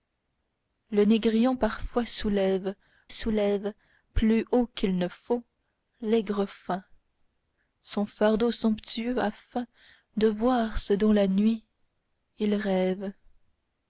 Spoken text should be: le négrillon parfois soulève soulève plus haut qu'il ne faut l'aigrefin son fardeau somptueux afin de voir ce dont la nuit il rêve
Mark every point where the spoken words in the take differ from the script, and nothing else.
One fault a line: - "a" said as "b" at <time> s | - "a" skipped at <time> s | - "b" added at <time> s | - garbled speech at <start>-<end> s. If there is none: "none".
none